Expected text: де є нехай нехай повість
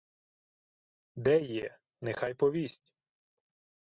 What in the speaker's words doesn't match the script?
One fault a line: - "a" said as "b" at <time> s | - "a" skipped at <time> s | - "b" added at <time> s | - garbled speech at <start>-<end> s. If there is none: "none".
- "нехай" skipped at 2.3 s